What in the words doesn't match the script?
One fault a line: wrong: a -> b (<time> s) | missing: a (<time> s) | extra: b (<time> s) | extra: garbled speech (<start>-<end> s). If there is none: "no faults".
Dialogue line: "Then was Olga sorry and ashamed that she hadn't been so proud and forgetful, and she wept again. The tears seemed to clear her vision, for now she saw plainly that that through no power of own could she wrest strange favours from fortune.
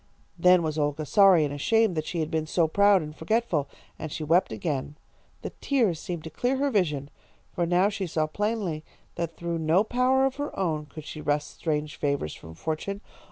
wrong: hadn't -> had (2.2 s)
missing: that (9.4 s)
extra: her (10.4 s)